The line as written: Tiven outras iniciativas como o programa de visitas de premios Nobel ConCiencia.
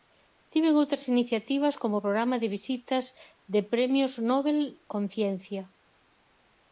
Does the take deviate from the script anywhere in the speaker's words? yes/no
no